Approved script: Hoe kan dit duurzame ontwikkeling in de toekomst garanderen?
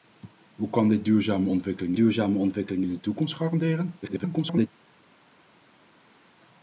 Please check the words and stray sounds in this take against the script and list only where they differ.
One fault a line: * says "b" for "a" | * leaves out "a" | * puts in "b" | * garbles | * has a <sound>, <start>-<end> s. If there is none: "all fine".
* puts in "duurzame ontwikkeling"
* garbles